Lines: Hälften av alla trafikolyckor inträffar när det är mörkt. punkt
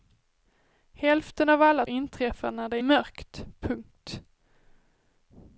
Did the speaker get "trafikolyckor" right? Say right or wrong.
wrong